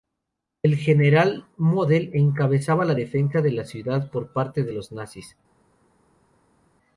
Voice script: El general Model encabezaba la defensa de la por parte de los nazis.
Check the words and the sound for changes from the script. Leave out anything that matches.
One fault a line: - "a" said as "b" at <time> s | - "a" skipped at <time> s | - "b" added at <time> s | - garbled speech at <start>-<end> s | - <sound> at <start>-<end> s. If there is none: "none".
- "ciudad" added at 3.6 s